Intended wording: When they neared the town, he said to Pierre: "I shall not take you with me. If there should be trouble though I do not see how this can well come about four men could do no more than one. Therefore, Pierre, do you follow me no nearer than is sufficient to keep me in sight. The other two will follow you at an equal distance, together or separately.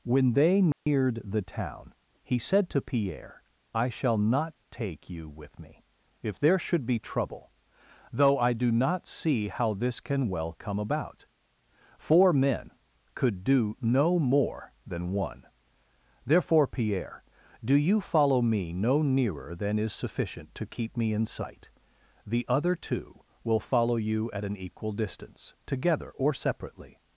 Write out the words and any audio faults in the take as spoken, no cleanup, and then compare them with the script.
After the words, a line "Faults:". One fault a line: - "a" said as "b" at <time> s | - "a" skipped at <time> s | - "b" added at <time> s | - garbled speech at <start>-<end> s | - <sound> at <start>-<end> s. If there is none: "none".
When they neared the town, he said to Pierre: "I shall not take you with me. If there should be trouble though I do not see how this can well come about four men could do no more than one. Therefore, Pierre, do you follow me no nearer than is sufficient to keep me in sight. The other two will follow you at an equal distance, together or separately.
Faults:
- dropout at 0.7-0.9 s